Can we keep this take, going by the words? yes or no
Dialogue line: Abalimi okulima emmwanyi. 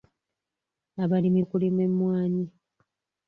yes